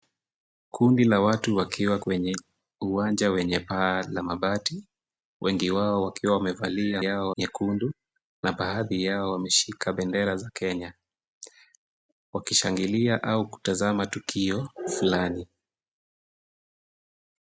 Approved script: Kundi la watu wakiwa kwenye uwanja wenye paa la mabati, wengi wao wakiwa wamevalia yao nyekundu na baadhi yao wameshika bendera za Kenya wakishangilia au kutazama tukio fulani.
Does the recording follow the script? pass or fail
pass